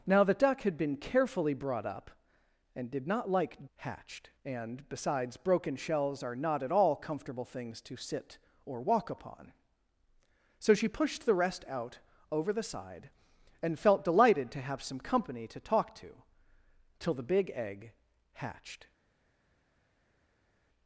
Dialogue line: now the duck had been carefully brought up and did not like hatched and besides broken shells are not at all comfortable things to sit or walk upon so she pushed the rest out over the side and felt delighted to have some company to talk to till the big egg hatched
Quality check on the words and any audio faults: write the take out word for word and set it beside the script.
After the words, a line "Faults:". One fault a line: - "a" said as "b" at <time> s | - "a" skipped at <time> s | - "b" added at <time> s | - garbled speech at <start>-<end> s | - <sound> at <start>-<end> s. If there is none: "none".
now the duck had been carefully brought up and did not like hatched and besides broken shells are not at all comfortable things to sit or walk upon so she pushed the rest out over the side and felt delighted to have some company to talk to till the big egg hatched
Faults:
none